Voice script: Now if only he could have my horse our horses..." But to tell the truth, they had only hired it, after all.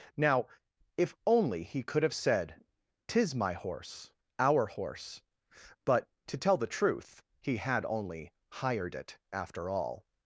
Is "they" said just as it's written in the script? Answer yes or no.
no